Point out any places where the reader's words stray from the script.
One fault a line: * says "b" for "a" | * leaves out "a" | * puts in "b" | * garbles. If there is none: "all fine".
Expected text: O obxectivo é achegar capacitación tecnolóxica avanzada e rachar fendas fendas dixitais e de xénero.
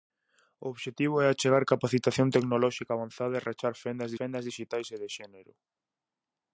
all fine